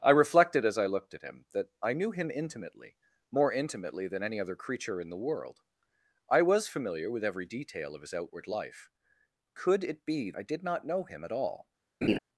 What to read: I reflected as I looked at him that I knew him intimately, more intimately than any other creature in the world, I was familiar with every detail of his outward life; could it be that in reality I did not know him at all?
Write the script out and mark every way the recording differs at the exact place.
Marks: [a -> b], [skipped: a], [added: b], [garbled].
I reflected as I looked at him that I knew him intimately, more intimately than any other creature in the world, I was familiar with every detail of his outward life; could it be [skipped: that in reality] I did not know him at all?